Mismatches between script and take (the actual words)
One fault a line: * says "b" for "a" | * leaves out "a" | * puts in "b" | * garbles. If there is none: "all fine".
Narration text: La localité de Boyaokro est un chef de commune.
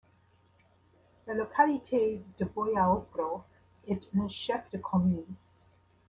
all fine